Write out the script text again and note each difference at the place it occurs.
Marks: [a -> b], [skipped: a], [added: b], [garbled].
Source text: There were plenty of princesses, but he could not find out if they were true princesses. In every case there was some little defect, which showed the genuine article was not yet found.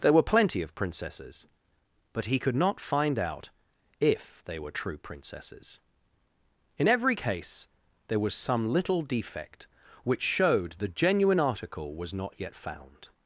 There were plenty of princesses, but he could not find out if they were true princesses. In every case there was some little defect, which showed the genuine article was not yet found.